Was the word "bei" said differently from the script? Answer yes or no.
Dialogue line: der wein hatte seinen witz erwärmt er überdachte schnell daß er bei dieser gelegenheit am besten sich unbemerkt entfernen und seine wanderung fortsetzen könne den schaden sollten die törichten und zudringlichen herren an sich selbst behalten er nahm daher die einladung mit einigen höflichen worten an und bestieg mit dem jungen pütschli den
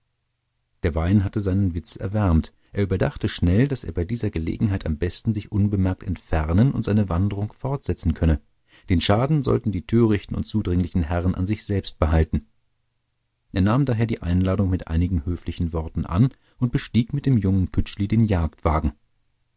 no